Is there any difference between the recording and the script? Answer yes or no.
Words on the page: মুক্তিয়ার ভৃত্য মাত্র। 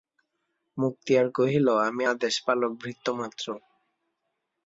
yes